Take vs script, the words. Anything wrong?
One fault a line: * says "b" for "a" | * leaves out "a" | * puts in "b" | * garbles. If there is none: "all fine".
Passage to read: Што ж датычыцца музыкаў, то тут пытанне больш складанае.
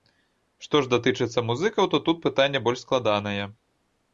all fine